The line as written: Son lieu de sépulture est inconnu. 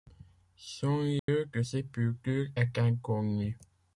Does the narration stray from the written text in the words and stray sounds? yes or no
yes